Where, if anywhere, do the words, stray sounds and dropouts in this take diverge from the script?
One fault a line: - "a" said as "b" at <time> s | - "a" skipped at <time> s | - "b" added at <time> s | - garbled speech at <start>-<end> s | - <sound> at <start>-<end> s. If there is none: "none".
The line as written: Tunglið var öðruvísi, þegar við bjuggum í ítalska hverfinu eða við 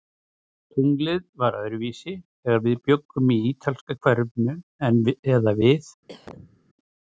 - cough at 6.1-6.6 s